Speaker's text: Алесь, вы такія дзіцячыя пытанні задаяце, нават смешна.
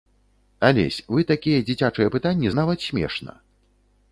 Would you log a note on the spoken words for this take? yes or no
yes